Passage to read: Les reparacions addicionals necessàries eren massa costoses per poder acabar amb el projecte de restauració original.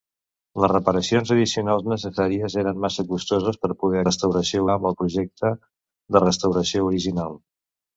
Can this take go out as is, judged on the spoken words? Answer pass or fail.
fail